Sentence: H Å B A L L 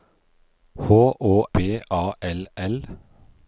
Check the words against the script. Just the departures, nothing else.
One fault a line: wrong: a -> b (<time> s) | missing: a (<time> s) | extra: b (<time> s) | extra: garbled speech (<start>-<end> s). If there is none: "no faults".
no faults